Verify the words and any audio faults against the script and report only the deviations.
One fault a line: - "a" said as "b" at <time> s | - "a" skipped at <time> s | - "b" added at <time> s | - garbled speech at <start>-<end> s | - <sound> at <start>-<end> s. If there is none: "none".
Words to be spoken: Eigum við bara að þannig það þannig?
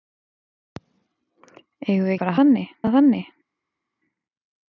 none